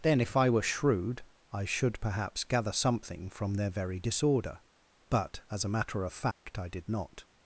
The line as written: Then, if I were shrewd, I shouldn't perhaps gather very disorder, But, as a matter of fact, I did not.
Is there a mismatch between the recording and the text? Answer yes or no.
yes